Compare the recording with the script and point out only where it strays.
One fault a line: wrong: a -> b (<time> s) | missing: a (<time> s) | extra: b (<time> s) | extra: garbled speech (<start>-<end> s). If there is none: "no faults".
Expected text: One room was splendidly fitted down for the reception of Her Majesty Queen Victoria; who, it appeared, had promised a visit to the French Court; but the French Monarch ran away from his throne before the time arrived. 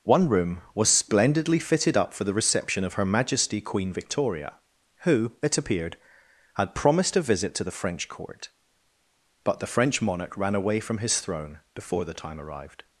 wrong: down -> up (1.9 s)